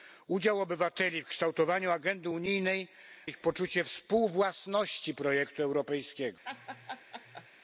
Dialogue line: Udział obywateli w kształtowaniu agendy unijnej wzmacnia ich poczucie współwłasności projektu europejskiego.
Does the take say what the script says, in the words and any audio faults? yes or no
no